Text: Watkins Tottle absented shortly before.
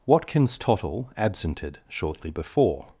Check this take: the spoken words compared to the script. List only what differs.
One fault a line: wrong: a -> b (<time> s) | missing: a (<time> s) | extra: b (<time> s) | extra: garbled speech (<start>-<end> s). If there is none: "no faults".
no faults